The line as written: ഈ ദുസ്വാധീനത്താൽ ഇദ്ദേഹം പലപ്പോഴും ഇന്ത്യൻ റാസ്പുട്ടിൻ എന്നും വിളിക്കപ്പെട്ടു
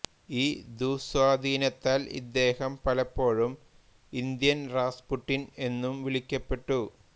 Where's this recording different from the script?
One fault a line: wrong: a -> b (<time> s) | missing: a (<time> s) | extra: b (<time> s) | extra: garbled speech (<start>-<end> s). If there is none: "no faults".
no faults